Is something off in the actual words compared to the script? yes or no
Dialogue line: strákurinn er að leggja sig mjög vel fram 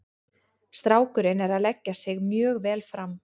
no